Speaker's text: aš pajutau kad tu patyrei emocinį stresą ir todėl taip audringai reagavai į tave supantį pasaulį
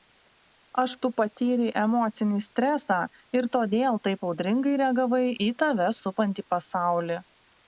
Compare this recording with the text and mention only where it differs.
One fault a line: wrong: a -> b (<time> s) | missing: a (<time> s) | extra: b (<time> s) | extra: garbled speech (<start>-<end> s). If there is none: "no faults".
missing: pajutau kad (0.9 s)